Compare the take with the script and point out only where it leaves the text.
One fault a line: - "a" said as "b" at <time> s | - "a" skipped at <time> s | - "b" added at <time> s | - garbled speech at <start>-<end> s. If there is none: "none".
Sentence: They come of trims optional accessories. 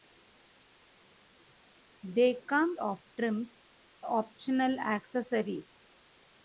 none